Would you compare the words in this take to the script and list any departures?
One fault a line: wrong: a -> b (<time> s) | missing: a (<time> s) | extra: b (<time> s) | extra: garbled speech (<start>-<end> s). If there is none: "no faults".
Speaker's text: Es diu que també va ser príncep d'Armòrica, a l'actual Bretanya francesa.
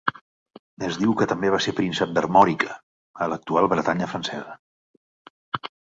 no faults